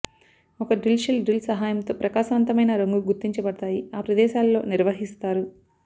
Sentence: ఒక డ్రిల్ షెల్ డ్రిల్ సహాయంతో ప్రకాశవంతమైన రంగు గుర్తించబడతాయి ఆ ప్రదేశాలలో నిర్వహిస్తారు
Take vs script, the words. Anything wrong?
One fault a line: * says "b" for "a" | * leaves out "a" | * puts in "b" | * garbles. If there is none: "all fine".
all fine